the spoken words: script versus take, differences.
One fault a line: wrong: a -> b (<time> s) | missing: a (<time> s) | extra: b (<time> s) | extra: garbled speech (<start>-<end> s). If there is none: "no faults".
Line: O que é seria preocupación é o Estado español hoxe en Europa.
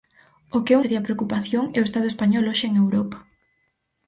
no faults